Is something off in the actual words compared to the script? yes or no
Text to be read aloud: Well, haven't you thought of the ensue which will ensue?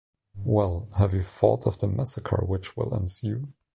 yes